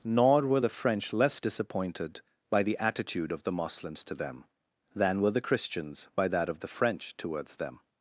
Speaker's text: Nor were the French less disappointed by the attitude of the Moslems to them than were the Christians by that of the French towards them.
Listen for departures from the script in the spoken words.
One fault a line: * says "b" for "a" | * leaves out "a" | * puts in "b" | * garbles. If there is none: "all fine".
all fine